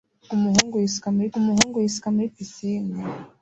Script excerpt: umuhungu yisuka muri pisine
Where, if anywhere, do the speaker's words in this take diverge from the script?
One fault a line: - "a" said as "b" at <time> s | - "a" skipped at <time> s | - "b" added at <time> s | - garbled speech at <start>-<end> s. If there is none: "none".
- "umuhungu yisuka muri" added at 1.4 s